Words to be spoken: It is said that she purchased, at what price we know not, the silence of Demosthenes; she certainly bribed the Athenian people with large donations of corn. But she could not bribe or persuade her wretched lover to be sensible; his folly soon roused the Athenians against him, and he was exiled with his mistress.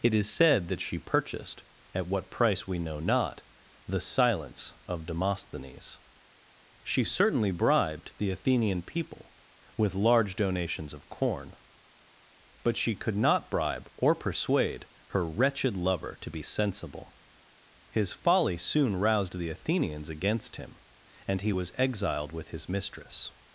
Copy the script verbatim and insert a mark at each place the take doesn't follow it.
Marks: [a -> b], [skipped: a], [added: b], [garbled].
It is said that she purchased, at what price we know not, the silence of Demosthenes; she certainly bribed the Athenian people with large donations of corn. But she could not bribe or persuade her wretched lover to be sensible; his folly soon roused the Athenians against him, and he was exiled with his mistress.